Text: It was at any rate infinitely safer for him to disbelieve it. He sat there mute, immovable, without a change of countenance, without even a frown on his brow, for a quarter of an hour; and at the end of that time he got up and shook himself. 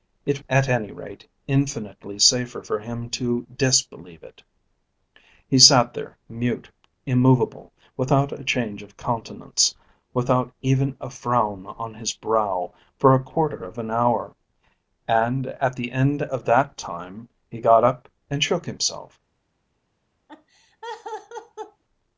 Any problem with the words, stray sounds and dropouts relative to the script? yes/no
yes